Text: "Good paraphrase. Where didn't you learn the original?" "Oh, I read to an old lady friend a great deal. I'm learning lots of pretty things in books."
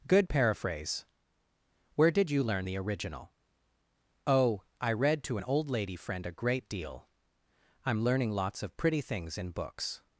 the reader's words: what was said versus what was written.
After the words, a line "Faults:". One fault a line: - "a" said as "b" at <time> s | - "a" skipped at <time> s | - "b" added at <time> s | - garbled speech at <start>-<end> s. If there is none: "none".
"Good paraphrase. Where did you learn the original?" "Oh, I read to an old lady friend a great deal. I'm learning lots of pretty things in books."
Faults:
- "didn't" said as "did" at 2.1 s